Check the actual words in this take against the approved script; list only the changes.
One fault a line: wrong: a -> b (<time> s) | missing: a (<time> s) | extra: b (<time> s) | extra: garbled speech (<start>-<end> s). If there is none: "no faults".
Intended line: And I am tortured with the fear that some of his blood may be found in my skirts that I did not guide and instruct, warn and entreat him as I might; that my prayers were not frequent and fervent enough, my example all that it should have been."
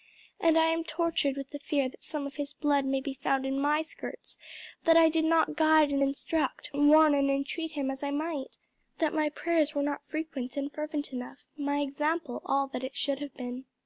no faults